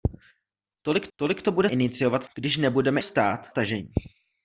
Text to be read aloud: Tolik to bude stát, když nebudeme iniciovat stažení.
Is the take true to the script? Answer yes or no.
no